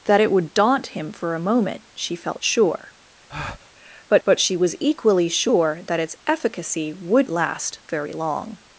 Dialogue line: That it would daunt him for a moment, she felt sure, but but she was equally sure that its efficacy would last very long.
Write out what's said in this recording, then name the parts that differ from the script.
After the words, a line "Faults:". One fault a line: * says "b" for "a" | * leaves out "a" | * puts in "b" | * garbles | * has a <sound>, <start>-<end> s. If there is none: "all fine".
That it would daunt him for a moment, she felt sure, but but she was equally sure that its efficacy would last very long.
Faults:
* has a breath, 3.3-3.7 s